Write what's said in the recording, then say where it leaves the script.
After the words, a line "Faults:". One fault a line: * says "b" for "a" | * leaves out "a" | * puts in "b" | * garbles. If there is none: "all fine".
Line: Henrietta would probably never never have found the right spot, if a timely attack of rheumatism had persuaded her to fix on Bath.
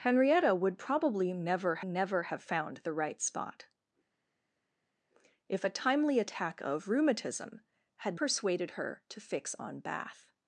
Henrietta would probably never never have found the right spot, if a timely attack of rheumatism had persuaded her to fix on Bath.
Faults:
all fine